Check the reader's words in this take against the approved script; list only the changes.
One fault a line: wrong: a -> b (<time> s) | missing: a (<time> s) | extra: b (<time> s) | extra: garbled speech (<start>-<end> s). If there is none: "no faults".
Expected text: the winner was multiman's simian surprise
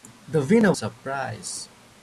missing: was multiman's simian (0.8 s)